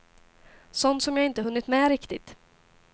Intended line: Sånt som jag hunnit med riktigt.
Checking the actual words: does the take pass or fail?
fail